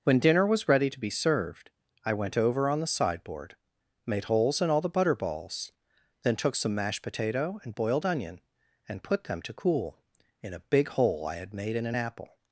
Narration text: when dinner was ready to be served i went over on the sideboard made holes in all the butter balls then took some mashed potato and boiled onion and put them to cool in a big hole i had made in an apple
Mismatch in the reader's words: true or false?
false